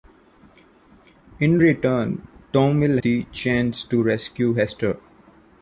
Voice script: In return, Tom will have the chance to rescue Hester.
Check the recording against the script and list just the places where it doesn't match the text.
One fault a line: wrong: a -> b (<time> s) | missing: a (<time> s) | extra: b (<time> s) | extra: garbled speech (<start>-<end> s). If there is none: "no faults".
missing: have (3.0 s)